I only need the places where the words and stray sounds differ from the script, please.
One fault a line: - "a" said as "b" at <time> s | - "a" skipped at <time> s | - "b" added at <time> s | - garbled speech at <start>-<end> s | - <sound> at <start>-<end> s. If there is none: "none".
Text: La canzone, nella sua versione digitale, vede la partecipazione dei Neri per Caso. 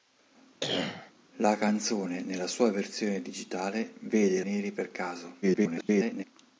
- cough at 0.6-1.1 s
- "la partecipazione dei" skipped at 4.4 s
- garbled speech at 5.4-6.2 s